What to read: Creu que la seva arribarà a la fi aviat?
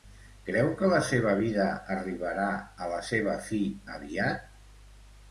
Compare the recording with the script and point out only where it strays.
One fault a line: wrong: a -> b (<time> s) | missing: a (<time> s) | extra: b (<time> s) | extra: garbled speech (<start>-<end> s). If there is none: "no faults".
extra: vida (1.4 s)
extra: seva (3.1 s)